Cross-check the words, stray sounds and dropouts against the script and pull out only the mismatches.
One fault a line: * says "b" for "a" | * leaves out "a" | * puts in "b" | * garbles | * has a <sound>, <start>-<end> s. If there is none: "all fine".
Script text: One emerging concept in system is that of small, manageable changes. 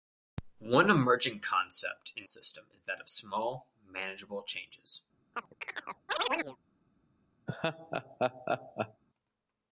* has a chirp, 5.3-6.6 s
* has a laugh, 7.5-9.0 s